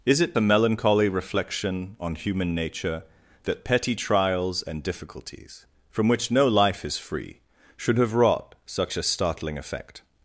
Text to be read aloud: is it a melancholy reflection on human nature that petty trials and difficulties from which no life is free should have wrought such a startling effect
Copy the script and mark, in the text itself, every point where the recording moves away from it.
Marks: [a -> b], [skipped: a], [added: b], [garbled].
is it a melancholy reflection on human nature that petty trials and difficulties from which no life is free should have wrought such a startling effect